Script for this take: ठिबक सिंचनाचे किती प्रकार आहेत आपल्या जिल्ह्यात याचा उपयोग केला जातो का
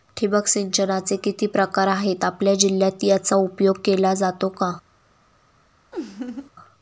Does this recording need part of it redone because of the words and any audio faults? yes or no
yes